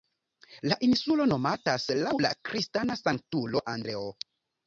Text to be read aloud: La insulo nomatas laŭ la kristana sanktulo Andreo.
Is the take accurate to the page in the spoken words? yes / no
yes